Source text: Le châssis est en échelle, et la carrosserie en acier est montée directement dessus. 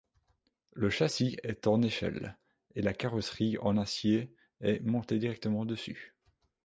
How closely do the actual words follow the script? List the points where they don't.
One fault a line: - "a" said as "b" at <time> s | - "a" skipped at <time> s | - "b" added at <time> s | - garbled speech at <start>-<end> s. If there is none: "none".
none